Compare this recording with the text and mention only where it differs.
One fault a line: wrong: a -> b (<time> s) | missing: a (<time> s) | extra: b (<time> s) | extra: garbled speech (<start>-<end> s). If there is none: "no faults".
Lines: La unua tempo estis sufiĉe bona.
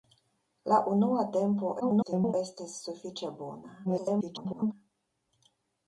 extra: garbled speech (1.8-2.3 s)
extra: garbled speech (3.8-4.7 s)